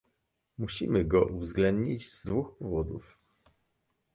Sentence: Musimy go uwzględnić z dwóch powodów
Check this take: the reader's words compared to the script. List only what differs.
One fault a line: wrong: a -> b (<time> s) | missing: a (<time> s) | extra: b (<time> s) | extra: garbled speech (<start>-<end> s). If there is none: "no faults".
no faults